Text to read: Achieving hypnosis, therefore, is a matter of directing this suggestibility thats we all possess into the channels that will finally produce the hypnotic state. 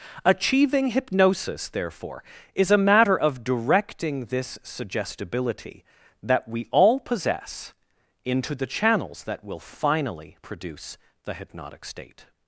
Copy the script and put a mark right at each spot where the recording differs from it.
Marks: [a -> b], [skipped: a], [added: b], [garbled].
Achieving hypnosis, therefore, is a matter of directing this suggestibility [thats -> that] we all possess into the channels that will finally produce the hypnotic state.